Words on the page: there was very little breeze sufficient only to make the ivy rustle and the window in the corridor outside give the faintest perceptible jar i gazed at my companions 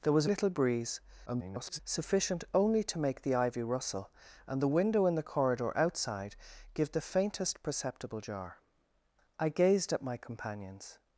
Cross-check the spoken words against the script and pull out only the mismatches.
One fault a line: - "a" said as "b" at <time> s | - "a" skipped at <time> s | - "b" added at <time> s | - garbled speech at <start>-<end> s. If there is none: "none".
- "very" skipped at 0.2 s
- garbled speech at 1.3-1.8 s